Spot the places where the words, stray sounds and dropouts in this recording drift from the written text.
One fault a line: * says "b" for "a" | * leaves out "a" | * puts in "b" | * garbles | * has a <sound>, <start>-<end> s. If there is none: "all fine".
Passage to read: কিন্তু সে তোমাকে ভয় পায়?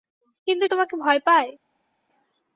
* leaves out "সে"